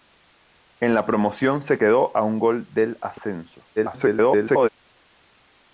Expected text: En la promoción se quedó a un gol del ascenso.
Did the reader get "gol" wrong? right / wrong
right